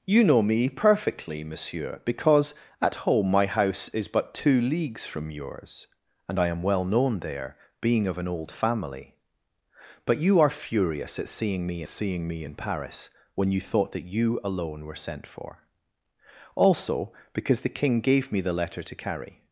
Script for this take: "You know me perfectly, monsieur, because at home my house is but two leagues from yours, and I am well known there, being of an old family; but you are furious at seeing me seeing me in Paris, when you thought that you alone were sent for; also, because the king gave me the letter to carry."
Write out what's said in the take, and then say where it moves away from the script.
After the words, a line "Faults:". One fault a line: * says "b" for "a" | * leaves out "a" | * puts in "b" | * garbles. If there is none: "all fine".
"You know me perfectly, monsieur, because at home my house is but two leagues from yours, and I am well known there, being of an old family; but you are furious at seeing me seeing me in Paris, when you thought that you alone were sent for; also, because the king gave me the letter to carry."
Faults:
all fine